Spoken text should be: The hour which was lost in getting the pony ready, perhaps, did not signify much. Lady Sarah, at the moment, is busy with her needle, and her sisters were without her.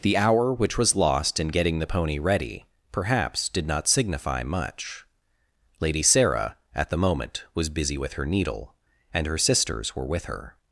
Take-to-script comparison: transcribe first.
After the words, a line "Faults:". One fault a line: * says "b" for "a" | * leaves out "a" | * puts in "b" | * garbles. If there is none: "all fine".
The hour which was lost in getting the pony ready, perhaps, did not signify much. Lady Sarah, at the moment, was busy with her needle, and her sisters were with her.
Faults:
* says "was" for "is"
* says "with" for "without"